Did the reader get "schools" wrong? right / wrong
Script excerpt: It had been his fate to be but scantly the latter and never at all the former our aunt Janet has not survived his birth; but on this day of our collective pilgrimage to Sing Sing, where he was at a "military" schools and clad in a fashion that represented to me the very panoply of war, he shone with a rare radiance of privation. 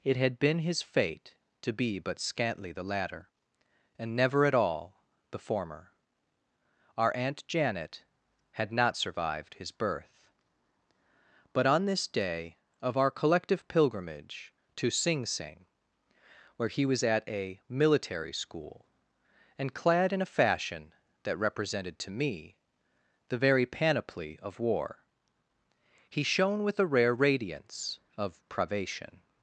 wrong